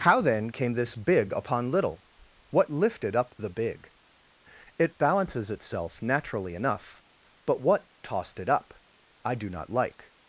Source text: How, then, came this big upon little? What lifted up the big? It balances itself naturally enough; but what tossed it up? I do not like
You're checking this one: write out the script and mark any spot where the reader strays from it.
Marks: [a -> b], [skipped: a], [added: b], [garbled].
How, then, came this big upon little? What lifted up the big? It balances itself naturally enough; but what tossed it up? I do not like